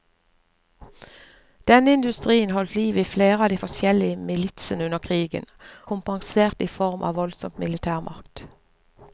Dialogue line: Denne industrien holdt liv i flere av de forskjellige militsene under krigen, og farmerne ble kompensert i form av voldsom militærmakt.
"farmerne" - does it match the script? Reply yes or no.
no